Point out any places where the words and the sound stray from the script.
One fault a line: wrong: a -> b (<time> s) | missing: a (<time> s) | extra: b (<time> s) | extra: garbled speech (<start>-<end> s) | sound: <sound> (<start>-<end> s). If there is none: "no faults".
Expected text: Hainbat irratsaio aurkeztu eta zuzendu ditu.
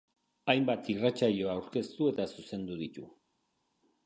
no faults